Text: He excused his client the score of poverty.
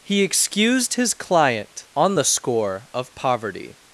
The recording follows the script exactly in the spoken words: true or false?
false